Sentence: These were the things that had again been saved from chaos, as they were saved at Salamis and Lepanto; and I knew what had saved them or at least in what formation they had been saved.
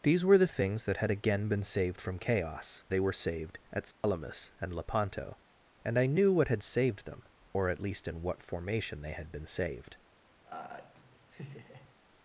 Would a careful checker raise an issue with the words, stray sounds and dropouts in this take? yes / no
yes